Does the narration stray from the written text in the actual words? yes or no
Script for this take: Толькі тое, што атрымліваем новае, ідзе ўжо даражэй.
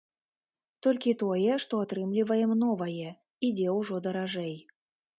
no